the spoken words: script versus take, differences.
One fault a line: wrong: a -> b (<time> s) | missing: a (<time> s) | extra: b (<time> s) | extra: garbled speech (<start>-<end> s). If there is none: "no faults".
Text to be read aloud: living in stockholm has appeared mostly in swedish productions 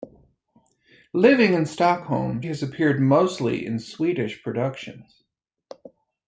no faults